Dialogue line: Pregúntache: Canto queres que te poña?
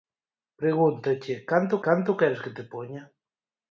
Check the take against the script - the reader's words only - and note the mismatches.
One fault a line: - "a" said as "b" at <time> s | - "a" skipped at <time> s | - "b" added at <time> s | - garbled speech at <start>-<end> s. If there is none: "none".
- "Canto" added at 1.9 s